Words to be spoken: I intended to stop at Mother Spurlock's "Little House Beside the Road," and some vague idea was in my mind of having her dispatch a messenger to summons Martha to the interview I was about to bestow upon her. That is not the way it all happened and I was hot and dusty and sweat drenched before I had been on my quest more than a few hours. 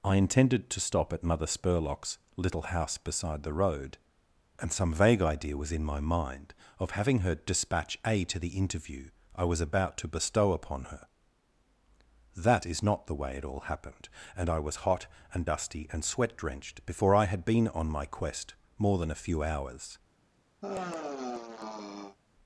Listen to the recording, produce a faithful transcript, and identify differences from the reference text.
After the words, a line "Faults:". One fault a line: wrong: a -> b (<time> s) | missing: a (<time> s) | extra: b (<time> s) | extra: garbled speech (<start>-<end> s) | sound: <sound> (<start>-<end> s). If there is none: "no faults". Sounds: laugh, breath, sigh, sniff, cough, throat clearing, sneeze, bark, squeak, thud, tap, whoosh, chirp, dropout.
I intended to stop at Mother Spurlock's "Little House Beside the Road," and some vague idea was in my mind of having her dispatch a to the interview I was about to bestow upon her. That is not the way it all happened and I was hot and dusty and sweat drenched before I had been on my quest more than a few hours.
Faults:
missing: messenger to summons Martha (8.2 s)
sound: sigh (20.6-22.2 s)